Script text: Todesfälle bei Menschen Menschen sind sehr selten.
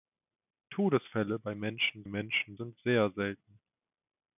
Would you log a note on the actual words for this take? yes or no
no